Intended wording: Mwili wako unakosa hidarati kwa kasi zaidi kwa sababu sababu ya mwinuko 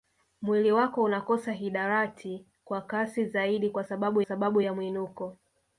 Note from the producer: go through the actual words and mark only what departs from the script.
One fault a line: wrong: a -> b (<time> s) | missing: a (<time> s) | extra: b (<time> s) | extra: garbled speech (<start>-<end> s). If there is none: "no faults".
no faults